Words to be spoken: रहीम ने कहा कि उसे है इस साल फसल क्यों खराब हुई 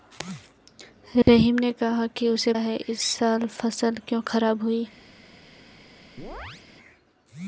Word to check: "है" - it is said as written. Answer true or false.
true